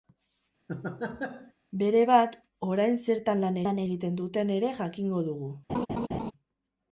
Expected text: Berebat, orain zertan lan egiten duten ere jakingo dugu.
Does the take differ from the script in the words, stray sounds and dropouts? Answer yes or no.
yes